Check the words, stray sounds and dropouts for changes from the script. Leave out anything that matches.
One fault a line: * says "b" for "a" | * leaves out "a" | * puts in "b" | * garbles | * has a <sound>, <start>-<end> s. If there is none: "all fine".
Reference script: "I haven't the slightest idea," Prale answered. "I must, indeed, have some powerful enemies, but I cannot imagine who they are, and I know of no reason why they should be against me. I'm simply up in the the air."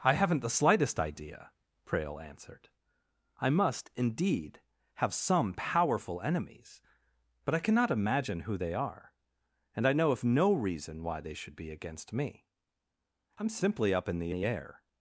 all fine